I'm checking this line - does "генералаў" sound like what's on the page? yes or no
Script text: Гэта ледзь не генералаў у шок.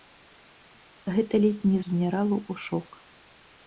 yes